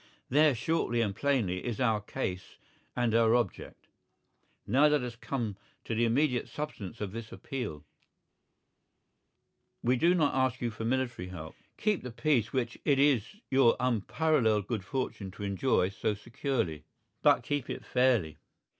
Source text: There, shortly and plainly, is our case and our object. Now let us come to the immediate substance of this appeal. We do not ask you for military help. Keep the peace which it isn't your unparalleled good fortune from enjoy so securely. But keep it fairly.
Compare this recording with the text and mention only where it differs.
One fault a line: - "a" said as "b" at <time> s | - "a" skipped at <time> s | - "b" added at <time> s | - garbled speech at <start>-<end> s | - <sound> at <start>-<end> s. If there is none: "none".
- "isn't" said as "is" at 13.0 s
- "from" said as "to" at 15.3 s